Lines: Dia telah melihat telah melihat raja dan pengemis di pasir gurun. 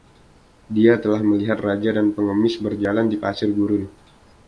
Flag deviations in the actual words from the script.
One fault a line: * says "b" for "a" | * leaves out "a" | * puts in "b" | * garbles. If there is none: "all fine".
* leaves out "telah melihat"
* puts in "berjalan"